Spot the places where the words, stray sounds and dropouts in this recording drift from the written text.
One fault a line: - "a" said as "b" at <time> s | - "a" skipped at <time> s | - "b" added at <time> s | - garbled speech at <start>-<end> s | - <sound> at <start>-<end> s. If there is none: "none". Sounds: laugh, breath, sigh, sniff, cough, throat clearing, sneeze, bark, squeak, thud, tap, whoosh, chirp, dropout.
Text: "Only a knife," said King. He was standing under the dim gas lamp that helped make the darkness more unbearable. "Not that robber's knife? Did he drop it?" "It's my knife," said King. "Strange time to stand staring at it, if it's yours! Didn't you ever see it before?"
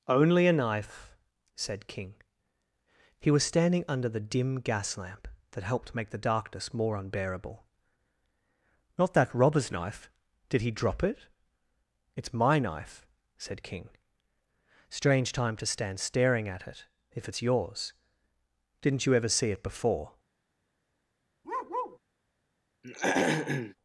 - bark at 21.4-22.0 s
- throat clearing at 22.8-23.8 s